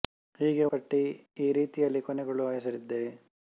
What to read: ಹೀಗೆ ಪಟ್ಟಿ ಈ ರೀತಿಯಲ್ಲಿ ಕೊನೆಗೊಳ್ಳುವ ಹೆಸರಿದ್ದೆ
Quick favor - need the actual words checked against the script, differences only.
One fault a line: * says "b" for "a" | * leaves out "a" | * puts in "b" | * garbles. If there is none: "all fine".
all fine